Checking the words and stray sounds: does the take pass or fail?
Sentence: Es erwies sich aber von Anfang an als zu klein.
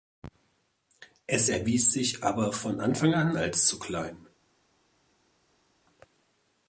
pass